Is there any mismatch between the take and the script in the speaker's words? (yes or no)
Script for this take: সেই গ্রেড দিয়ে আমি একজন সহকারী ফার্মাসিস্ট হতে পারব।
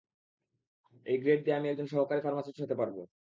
yes